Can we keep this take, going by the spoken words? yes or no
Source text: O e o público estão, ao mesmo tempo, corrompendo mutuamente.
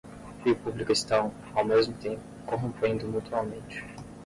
yes